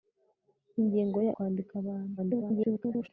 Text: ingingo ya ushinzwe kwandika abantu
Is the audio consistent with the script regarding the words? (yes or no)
no